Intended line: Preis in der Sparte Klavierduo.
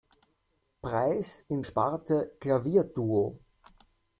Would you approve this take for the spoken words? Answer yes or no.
no